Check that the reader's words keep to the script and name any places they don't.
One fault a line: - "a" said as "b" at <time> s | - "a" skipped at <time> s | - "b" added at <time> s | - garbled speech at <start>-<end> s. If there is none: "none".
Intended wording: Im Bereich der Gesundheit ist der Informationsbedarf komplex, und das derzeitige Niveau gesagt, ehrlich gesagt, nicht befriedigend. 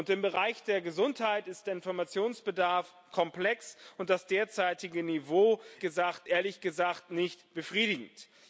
none